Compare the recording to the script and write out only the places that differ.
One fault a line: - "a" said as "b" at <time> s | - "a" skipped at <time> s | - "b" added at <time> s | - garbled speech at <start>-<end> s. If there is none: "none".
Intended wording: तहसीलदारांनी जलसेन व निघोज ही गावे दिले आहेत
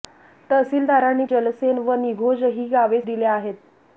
none